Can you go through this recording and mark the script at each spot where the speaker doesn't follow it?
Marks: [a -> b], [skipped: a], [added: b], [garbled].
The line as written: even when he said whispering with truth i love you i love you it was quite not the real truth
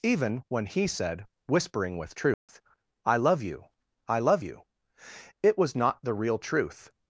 even when he said whispering with truth i love you i love you it was [skipped: quite] not the real truth